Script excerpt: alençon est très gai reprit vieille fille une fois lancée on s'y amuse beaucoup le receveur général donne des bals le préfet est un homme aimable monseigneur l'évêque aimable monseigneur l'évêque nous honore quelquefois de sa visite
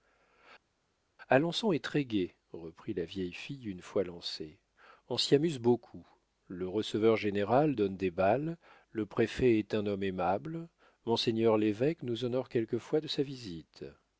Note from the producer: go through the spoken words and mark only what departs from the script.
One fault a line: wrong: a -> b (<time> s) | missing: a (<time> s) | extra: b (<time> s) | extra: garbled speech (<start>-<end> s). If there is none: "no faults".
extra: la (2.9 s)
missing: aimable monseigneur l'évêque (12.0 s)